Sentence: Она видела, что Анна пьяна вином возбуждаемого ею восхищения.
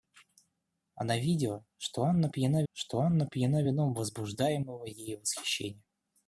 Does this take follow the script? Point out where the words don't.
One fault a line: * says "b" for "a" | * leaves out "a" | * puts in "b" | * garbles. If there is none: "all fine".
* puts in "что Анна пьяна"